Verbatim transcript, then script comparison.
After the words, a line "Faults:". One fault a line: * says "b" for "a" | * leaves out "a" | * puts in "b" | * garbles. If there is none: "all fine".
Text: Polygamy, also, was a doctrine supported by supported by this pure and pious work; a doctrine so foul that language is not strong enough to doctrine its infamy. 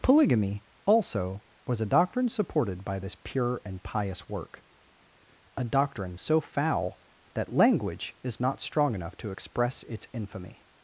Polygamy, also, was a doctrine supported by this pure and pious work; a doctrine so foul that language is not strong enough to express its infamy.
Faults:
* leaves out "supported by"
* says "express" for "doctrine"